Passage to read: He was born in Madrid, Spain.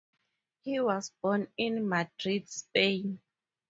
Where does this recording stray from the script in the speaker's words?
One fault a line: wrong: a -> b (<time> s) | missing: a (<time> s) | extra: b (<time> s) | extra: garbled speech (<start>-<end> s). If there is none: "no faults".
no faults